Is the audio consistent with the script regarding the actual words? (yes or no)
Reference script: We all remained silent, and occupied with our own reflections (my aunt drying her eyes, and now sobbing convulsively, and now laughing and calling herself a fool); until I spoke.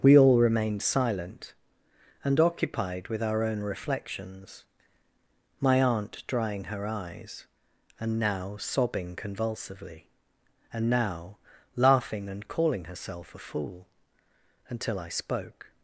yes